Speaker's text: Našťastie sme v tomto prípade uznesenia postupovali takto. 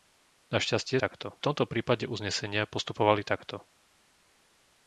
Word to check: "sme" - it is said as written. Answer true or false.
false